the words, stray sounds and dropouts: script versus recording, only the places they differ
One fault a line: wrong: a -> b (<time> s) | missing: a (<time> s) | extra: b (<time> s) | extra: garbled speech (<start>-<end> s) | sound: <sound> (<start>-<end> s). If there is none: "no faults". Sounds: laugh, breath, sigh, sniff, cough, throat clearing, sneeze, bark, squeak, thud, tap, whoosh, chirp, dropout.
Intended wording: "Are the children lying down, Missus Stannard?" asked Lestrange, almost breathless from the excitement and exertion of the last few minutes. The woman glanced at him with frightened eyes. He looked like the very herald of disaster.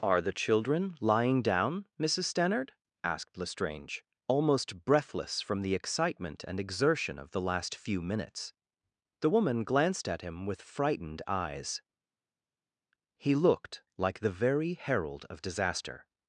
no faults